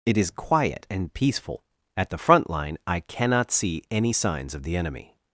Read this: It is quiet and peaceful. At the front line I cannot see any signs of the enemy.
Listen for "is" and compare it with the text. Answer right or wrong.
right